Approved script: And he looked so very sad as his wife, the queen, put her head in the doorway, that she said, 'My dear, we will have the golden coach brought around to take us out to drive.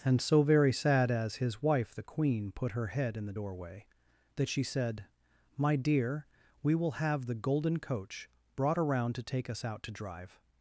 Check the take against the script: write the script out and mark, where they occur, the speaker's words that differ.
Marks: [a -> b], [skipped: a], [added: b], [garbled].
And [skipped: he looked] so very sad as his wife, the queen, put her head in the doorway, that she said, 'My dear, we will have the golden coach brought around to take us out to drive.